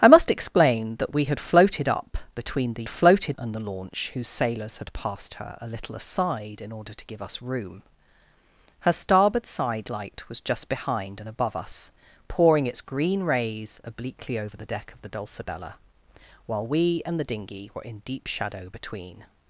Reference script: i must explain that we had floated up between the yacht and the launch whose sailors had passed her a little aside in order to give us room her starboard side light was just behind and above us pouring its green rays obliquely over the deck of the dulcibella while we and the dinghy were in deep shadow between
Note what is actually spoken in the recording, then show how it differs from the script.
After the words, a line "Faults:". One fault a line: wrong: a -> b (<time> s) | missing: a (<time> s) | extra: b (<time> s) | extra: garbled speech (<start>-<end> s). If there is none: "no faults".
i must explain that we had floated up between the floated and the launch whose sailors had passed her a little aside in order to give us room her starboard side light was just behind and above us pouring its green rays obliquely over the deck of the dulcibella while we and the dinghy were in deep shadow between
Faults:
wrong: yacht -> floated (2.9 s)